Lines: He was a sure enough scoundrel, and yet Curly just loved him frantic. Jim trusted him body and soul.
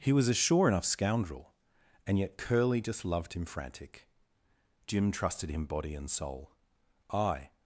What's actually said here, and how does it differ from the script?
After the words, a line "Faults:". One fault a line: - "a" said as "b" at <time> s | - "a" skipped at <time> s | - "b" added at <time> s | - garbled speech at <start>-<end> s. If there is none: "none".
He was a sure enough scoundrel, and yet Curly just loved him frantic. Jim trusted him body and soul. I
Faults:
- "I" added at 7.1 s